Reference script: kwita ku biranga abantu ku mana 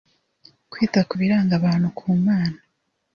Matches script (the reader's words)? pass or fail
pass